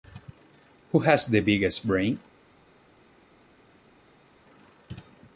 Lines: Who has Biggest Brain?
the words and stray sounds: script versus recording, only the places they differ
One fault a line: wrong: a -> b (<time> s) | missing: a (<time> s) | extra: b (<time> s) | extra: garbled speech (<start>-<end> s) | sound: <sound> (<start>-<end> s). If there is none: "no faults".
extra: the (1.3 s)